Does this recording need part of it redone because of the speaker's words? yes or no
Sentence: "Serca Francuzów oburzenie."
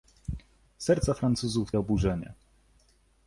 no